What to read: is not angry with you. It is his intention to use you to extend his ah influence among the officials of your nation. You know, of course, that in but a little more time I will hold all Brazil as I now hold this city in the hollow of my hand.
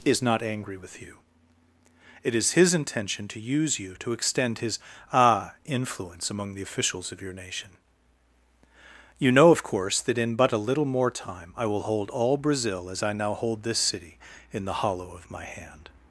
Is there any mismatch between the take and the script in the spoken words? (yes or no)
no